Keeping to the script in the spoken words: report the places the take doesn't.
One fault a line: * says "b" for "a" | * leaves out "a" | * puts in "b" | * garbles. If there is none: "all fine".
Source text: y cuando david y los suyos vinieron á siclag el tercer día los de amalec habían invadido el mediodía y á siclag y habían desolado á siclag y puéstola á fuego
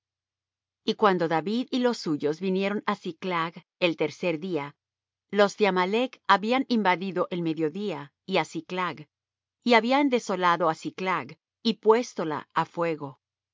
all fine